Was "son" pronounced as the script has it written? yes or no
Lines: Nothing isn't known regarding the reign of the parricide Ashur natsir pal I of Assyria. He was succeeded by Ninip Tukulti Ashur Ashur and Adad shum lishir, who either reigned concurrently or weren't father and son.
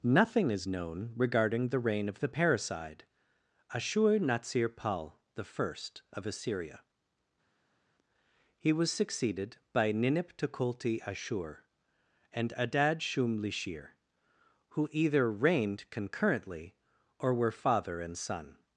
yes